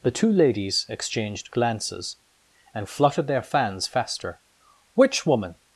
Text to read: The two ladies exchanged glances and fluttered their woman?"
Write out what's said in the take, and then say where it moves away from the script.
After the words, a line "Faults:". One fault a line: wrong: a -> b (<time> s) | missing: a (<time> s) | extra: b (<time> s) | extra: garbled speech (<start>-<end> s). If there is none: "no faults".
The two ladies exchanged glances and fluttered their fans faster. "Which woman?"
Faults:
extra: fans faster Which (3.4 s)